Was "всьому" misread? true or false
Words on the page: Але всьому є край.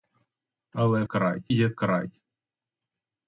true